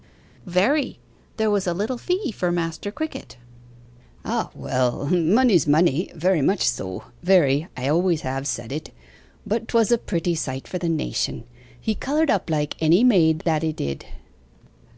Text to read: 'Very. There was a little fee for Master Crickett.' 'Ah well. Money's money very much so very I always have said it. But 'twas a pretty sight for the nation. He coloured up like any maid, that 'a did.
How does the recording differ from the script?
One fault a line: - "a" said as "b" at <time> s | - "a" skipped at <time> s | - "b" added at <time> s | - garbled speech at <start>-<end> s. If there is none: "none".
none